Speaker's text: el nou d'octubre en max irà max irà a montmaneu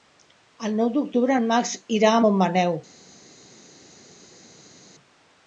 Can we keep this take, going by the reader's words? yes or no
no